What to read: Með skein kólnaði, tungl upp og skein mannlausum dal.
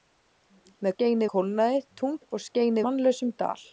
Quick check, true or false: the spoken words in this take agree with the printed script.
true